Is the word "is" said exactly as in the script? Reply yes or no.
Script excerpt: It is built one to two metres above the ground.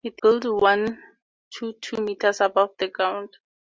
no